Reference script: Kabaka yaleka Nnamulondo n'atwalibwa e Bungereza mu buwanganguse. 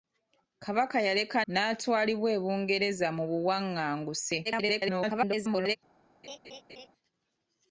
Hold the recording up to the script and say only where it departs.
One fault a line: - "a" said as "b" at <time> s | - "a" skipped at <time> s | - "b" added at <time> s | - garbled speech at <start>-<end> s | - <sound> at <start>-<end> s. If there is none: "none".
- "Nnamulondo" skipped at 1.4 s
- garbled speech at 4.4-5.8 s
- laugh at 6.2-6.9 s